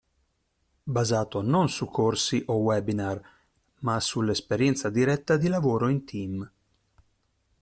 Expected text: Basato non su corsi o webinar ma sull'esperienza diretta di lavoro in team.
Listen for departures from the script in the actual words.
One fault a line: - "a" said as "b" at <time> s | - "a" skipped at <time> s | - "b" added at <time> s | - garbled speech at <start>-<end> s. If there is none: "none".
none